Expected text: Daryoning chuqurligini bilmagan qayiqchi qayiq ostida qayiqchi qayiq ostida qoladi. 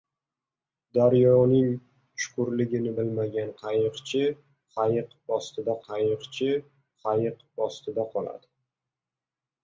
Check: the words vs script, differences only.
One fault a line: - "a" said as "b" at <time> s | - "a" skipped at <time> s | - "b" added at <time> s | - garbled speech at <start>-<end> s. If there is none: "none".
none